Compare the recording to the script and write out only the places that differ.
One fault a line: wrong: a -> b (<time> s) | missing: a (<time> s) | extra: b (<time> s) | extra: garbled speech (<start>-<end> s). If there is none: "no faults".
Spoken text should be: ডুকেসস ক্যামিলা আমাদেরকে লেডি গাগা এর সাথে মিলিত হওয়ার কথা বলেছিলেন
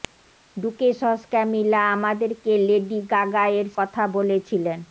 missing: সাথে মিলিত হওয়ার (3.7 s)